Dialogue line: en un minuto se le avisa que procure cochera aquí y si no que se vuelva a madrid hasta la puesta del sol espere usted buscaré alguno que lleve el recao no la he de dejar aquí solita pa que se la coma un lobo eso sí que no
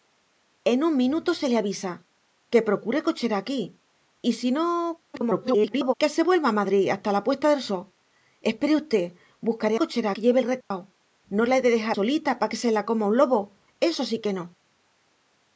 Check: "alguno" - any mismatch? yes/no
yes